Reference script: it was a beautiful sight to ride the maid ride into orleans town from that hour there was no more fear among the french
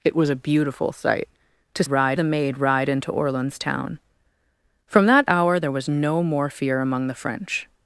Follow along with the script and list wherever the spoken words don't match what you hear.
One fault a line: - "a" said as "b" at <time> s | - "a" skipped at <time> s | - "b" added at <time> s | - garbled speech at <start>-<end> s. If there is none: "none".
none